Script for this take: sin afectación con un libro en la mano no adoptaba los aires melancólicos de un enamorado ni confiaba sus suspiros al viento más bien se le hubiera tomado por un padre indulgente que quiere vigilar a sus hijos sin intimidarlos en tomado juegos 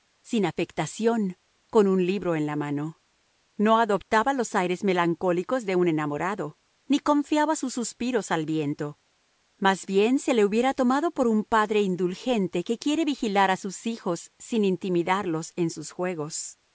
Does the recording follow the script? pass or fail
fail